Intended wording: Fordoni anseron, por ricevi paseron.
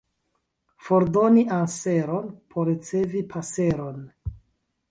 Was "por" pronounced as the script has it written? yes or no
yes